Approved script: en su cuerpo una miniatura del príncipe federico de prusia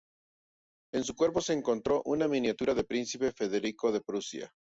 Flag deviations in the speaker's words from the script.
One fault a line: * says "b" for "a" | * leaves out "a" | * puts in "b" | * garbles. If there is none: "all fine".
* puts in "se encontró"